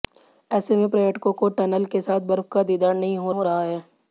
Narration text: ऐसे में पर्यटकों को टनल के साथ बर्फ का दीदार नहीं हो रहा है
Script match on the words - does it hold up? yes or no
no